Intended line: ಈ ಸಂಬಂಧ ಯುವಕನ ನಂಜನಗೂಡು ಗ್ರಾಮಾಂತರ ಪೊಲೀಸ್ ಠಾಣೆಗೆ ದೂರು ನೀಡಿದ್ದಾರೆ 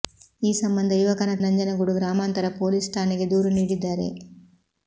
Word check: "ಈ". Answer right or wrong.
right